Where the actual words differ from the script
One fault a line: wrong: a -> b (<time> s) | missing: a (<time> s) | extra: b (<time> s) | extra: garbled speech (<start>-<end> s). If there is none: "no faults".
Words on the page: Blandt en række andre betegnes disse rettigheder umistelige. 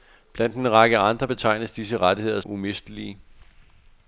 no faults